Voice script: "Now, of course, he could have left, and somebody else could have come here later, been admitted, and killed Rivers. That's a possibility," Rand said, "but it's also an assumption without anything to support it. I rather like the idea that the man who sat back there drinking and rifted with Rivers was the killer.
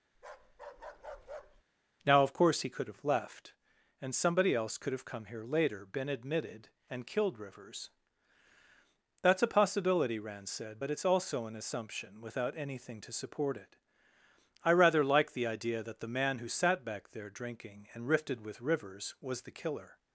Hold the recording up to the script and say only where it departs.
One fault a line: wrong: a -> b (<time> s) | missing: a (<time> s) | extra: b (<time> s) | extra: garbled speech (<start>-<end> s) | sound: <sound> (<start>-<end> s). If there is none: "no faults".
sound: bark (0.1-1.6 s)